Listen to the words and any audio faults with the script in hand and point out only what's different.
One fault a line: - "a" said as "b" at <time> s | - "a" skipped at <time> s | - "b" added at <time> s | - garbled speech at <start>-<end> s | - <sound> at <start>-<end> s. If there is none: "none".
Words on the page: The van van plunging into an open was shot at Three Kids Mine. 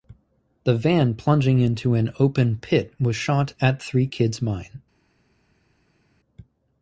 - "van" skipped at 1.1 s
- "pit" added at 2.6 s